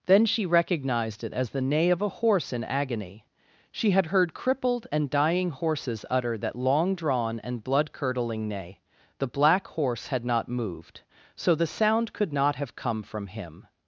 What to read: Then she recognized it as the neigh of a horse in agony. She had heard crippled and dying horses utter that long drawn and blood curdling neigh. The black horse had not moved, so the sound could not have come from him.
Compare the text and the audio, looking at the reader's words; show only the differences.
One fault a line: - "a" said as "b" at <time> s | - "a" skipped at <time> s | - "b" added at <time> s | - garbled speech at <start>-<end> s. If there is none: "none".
none